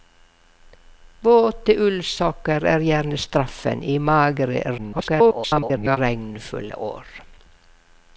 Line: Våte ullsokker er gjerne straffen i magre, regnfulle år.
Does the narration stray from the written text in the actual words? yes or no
yes